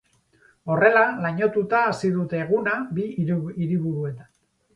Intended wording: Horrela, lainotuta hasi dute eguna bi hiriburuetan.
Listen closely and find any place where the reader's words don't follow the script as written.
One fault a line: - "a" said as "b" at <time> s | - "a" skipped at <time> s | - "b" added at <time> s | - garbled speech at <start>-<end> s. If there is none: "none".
none